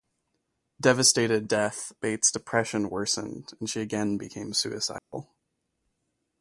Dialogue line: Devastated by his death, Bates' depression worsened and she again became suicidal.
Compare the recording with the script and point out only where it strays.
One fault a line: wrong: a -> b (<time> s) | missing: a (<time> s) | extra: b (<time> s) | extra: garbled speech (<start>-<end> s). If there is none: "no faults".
missing: by his (1.5 s)